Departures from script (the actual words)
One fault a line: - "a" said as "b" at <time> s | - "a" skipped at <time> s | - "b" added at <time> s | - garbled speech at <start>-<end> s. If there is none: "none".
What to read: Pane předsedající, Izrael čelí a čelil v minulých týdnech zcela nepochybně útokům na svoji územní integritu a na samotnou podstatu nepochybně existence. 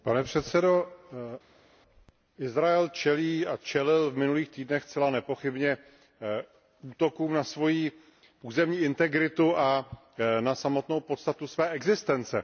- "nepochybně" said as "své" at 11.5 s